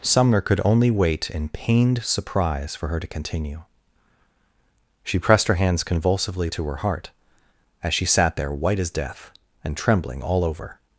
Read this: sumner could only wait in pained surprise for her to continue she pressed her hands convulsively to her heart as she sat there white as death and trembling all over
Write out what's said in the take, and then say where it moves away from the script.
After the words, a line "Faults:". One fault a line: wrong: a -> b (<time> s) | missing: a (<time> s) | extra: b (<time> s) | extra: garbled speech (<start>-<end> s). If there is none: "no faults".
sumner could only wait in pained surprise for her to continue she pressed her hands convulsively to her heart as she sat there white as death and trembling all over
Faults:
no faults